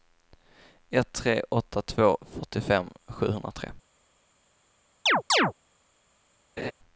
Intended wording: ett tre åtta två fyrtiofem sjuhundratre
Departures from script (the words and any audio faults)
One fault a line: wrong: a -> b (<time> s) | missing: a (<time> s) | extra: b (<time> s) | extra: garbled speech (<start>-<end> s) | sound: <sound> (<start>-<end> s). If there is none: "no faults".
sound: chirp (5.1-5.5 s)
sound: laugh (6.6-6.7 s)